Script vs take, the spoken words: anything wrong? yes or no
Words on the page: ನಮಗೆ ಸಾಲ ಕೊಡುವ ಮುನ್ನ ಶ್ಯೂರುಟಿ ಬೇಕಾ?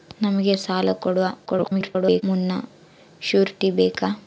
yes